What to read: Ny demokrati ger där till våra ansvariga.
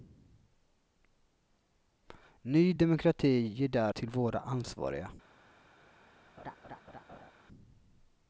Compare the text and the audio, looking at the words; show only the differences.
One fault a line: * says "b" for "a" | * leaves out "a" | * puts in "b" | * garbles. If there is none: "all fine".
all fine